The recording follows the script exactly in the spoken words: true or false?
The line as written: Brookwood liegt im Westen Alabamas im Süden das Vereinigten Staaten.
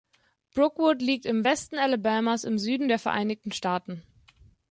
false